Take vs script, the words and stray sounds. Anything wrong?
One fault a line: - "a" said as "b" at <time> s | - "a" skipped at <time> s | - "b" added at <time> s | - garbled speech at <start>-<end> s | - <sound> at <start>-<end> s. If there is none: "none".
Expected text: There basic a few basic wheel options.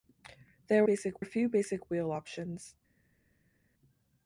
none